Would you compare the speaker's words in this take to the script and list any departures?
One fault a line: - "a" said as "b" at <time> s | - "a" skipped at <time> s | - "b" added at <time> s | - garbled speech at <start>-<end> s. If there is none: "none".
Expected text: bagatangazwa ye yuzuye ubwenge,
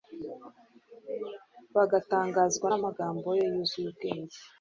- "n'amagambo" added at 2.7 s